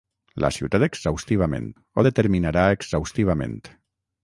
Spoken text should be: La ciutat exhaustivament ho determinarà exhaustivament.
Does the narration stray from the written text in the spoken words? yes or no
no